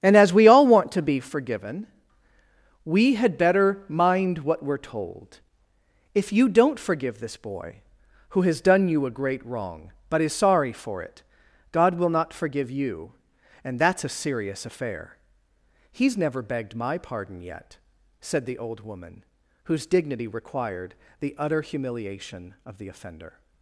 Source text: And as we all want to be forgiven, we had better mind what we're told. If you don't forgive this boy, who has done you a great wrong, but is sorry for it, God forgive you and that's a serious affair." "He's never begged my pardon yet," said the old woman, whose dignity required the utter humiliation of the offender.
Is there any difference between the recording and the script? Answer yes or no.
yes